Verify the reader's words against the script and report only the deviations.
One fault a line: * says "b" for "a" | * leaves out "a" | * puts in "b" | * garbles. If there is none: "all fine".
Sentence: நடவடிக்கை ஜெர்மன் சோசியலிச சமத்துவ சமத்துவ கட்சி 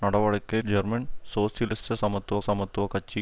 all fine